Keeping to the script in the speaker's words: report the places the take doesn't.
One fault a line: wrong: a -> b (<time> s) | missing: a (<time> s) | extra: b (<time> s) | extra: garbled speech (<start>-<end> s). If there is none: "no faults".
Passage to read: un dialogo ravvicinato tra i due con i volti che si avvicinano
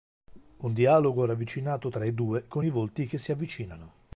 no faults